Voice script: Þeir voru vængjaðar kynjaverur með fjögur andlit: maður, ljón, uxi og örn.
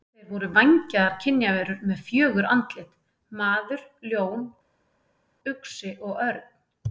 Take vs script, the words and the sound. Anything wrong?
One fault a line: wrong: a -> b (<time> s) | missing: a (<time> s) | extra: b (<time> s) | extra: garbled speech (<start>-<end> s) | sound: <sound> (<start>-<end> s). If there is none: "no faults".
no faults